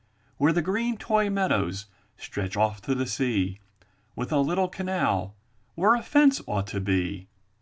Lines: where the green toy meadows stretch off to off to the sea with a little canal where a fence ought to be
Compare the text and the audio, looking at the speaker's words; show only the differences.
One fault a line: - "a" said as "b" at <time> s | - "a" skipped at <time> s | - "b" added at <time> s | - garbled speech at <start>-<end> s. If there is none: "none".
- "off to" skipped at 2.9 s